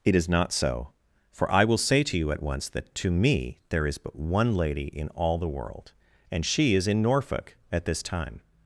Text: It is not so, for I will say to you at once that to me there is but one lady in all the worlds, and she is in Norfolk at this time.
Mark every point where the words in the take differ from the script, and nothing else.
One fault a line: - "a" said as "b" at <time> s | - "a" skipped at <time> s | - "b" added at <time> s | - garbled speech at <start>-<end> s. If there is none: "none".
- "worlds" said as "world" at 5.5 s